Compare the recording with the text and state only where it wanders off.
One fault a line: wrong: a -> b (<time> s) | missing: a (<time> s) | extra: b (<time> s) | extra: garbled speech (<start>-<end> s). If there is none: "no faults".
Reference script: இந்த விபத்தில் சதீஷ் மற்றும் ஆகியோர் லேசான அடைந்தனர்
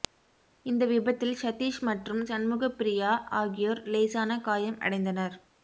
extra: சண்முகப்பிரியா (2.3 s)
extra: காயம் (4.4 s)